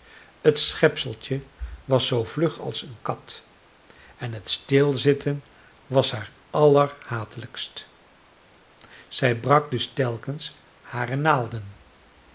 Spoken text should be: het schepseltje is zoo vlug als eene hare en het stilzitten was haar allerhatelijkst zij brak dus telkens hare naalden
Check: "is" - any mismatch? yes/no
yes